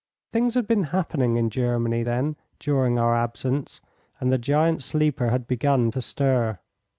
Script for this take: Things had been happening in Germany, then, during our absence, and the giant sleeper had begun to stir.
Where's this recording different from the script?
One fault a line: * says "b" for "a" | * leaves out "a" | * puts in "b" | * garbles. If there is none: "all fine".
all fine